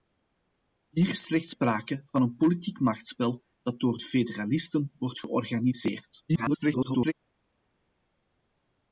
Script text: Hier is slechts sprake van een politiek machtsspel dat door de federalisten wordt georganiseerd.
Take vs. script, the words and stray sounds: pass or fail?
fail